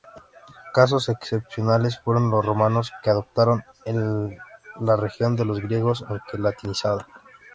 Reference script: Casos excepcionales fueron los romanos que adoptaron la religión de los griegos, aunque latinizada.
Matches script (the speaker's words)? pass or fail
pass